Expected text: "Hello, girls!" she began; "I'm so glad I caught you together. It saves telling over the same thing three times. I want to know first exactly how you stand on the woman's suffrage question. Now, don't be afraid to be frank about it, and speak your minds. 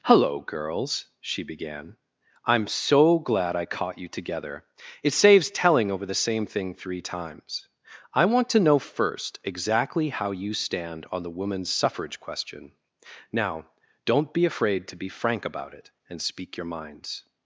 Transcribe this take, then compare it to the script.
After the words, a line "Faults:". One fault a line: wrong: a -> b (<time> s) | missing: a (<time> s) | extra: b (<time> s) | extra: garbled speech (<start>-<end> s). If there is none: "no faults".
"Hello, girls!" she began; "I'm so glad I caught you together. It saves telling over the same thing three times. I want to know first exactly how you stand on the woman's suffrage question. Now, don't be afraid to be frank about it, and speak your minds.
Faults:
no faults